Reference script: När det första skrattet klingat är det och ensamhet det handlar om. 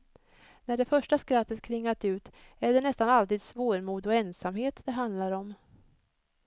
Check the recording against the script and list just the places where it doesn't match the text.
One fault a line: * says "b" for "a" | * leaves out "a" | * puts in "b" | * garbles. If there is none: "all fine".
* puts in "ut"
* puts in "nästan alltid svårmod"